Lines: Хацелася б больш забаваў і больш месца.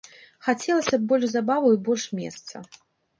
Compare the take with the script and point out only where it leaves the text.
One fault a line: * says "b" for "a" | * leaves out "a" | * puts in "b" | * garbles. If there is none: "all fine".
all fine